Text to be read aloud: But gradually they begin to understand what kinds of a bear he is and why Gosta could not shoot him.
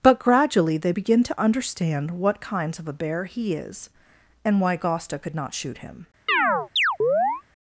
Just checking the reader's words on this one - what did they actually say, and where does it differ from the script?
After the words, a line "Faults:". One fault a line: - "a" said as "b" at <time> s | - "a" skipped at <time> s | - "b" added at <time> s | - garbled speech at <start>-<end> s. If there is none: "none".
But gradually they begin to understand what kinds of a bear he is and why Gosta could not shoot him.
Faults:
none